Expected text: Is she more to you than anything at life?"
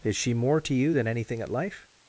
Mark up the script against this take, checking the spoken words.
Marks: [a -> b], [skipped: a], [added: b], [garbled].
Is she more to you than anything at life?"